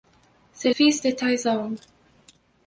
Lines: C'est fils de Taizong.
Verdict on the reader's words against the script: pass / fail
pass